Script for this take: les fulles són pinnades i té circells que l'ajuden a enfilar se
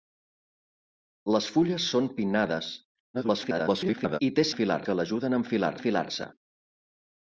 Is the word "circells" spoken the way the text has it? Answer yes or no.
no